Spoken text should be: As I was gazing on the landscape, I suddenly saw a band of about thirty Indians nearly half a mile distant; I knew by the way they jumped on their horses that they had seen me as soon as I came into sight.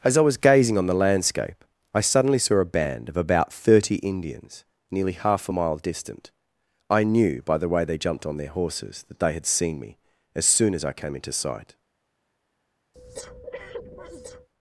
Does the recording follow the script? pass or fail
pass